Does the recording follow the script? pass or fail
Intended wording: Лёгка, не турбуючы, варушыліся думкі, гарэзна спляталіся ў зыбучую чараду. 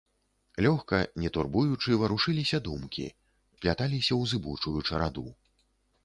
fail